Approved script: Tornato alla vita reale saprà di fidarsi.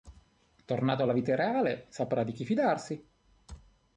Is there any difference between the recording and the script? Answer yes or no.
yes